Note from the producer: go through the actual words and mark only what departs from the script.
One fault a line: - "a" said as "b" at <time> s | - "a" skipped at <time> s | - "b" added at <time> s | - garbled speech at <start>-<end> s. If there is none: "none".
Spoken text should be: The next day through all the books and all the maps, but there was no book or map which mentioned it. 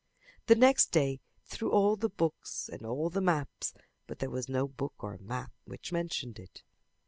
none